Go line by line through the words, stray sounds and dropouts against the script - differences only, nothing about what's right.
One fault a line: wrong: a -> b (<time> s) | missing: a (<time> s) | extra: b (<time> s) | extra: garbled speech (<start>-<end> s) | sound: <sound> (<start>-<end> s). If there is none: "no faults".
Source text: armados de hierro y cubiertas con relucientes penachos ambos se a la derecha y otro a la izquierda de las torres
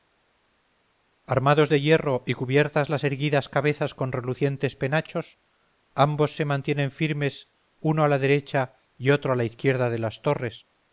extra: las erguidas cabezas (2.9 s)
extra: mantienen firmes uno (6.5 s)